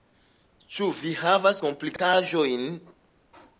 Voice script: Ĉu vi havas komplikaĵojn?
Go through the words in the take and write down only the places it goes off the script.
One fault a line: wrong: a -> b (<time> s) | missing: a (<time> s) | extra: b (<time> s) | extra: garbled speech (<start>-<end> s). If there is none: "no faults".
no faults